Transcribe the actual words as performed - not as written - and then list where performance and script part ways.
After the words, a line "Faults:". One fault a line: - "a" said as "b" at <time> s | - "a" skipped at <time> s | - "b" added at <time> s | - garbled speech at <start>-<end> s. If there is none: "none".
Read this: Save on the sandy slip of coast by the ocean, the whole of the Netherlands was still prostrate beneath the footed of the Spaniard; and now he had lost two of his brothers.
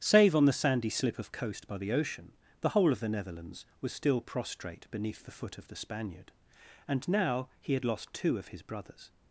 Save on the sandy slip of coast by the ocean, the whole of the Netherlands was still prostrate beneath the foot of the Spaniard; and now he had lost two of his brothers.
Faults:
- "footed" said as "foot" at 5.3 s